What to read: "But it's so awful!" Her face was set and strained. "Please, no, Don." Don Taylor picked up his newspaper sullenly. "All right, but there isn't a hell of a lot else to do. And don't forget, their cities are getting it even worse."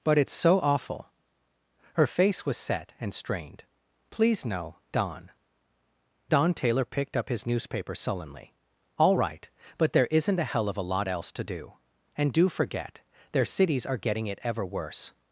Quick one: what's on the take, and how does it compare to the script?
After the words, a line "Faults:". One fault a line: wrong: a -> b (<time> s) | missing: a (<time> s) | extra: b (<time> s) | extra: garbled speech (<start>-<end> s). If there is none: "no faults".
"But it's so awful!" Her face was set and strained. "Please, no, Don." Don Taylor picked up his newspaper sullenly. "All right, but there isn't a hell of a lot else to do. And do forget, their cities are getting it ever worse."
Faults:
wrong: don't -> do (12.3 s)
wrong: even -> ever (14.4 s)